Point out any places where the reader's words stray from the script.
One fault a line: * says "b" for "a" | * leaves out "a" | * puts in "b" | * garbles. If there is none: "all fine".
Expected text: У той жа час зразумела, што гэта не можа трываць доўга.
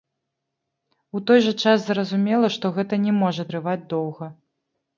all fine